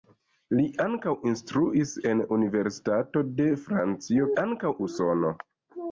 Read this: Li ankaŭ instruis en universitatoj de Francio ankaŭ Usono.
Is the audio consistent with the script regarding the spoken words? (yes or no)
yes